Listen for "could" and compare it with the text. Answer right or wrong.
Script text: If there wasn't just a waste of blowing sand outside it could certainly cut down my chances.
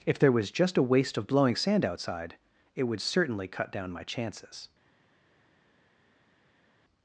wrong